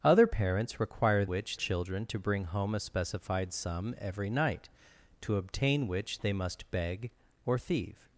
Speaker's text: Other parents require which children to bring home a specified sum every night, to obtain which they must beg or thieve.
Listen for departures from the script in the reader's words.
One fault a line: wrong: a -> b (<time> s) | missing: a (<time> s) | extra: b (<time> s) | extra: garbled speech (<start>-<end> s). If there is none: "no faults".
no faults